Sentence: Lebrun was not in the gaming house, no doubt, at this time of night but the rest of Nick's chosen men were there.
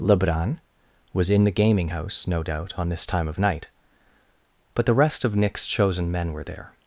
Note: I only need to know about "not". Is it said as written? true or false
false